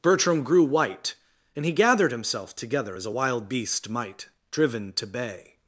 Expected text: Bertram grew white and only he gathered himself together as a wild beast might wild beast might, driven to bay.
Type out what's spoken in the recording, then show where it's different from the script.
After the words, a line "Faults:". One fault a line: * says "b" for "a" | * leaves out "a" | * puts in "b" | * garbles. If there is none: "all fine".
Bertram grew white and he gathered himself together as a wild beast might, driven to bay.
Faults:
* leaves out "only"
* leaves out "wild beast might"